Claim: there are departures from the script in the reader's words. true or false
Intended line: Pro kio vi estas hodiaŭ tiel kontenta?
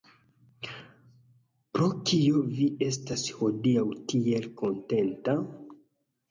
false